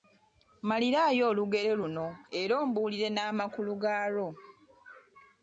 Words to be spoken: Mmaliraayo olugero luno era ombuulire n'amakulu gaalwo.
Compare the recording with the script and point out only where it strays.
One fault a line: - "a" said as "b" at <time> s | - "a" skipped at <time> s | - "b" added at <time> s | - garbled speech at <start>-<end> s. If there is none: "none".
none